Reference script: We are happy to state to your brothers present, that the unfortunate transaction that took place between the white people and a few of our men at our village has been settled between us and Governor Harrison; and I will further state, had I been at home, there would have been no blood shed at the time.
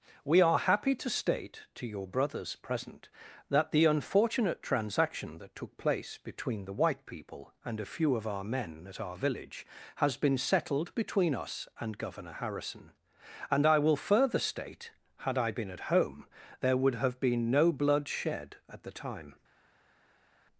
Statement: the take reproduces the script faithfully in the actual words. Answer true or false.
true